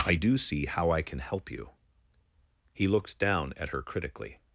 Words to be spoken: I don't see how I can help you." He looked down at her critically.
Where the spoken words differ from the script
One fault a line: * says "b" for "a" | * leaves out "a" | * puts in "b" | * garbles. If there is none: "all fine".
* says "do" for "don't"